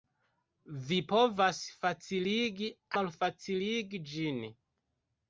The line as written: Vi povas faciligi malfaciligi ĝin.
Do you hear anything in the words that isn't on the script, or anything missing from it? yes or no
no